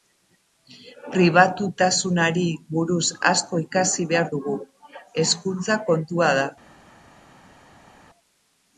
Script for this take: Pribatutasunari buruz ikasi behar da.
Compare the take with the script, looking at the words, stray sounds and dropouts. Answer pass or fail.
fail